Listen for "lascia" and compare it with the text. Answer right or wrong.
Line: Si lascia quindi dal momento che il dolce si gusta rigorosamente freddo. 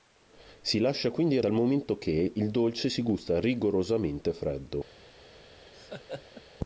right